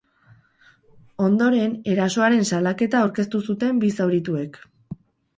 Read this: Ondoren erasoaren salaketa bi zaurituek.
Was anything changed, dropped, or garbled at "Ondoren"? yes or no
no